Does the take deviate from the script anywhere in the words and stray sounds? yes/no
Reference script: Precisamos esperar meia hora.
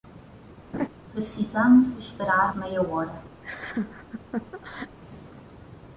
yes